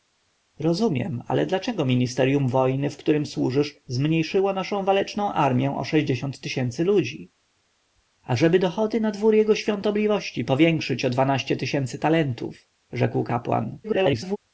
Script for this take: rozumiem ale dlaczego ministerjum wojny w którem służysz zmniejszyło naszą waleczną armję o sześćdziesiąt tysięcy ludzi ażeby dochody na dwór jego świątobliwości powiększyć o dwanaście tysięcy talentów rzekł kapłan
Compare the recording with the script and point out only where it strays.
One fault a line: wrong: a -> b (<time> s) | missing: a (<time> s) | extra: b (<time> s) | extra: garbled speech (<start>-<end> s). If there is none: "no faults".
extra: garbled speech (13.8-14.4 s)